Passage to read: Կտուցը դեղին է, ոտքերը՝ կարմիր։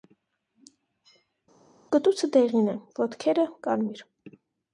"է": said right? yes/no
yes